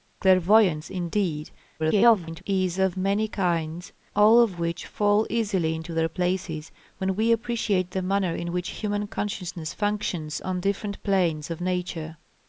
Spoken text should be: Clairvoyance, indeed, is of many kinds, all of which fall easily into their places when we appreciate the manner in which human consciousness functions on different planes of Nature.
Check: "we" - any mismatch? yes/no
no